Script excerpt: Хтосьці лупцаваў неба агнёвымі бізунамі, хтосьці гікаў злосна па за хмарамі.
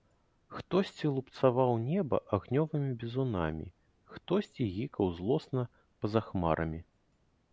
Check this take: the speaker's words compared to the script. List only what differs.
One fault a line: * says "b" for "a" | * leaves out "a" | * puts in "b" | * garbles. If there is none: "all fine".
all fine